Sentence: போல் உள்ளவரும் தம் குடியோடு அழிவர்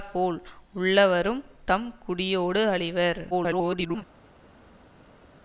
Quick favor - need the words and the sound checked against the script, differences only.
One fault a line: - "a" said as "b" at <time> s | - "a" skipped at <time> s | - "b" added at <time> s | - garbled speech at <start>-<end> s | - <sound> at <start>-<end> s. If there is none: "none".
- garbled speech at 3.3-4.0 s